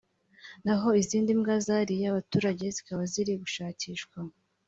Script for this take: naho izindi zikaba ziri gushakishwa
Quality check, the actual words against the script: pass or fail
fail